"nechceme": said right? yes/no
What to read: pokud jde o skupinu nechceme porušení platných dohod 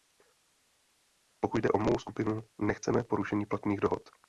yes